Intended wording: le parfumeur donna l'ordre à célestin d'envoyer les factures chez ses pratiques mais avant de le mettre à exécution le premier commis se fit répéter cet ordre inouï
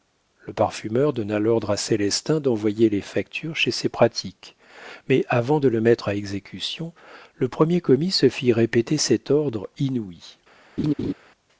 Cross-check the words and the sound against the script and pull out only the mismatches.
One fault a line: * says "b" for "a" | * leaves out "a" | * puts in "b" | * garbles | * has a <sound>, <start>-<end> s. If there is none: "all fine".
* has a laugh, 10.8-11.1 s